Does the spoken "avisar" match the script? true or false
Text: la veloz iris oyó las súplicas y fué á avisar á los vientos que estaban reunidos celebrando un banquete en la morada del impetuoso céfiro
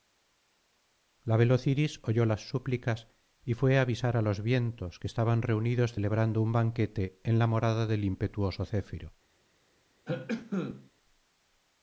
true